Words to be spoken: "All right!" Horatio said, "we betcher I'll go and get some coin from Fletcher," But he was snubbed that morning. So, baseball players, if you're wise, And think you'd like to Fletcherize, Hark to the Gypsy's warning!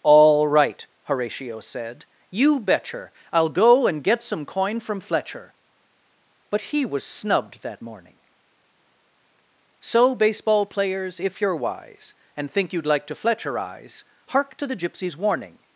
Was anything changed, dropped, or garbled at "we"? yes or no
yes